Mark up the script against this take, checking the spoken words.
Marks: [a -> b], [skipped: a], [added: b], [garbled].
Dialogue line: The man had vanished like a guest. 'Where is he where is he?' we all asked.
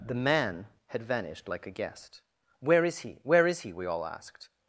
The man had vanished like a guest. 'Where is he where is he?' we all asked.